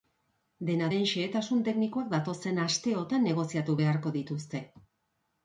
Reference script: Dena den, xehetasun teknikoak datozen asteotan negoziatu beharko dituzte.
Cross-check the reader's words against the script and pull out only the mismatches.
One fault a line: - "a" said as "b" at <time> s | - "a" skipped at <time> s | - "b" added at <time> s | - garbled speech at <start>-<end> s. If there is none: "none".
none